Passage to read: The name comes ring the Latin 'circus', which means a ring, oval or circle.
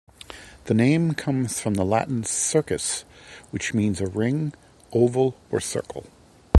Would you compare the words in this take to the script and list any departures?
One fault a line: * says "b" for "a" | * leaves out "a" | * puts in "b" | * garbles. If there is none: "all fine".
* says "from" for "ring"